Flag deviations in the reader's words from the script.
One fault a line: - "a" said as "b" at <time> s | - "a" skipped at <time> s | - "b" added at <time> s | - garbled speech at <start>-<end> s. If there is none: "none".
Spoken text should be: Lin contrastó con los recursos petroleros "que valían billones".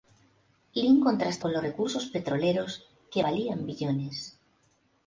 none